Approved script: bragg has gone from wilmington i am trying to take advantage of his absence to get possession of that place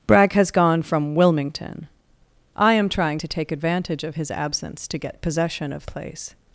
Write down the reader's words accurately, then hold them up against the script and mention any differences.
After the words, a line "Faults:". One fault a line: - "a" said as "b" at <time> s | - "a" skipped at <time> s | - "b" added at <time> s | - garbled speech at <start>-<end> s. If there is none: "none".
bragg has gone from wilmington i am trying to take advantage of his absence to get possession of place
Faults:
- "that" skipped at 5.9 s